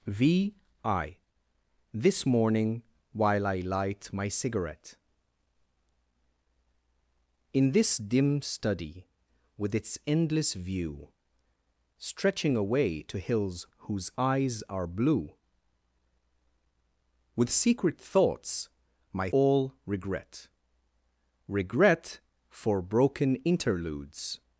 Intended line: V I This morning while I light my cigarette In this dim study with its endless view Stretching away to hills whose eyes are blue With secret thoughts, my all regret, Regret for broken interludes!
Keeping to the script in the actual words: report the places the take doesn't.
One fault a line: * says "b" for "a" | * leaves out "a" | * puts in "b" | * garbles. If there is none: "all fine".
all fine